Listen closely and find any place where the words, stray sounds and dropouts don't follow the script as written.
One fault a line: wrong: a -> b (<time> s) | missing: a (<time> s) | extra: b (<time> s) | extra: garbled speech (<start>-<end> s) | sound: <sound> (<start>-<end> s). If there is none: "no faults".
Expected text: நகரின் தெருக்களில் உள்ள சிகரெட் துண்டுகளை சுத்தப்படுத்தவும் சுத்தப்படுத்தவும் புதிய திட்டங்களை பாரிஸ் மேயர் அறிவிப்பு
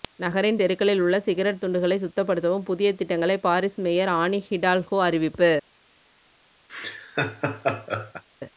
missing: சுத்தப்படுத்தவும் (2.7 s)
extra: ஆனி ஹிடால்கோ (4.2 s)
sound: laugh (6.7-8.2 s)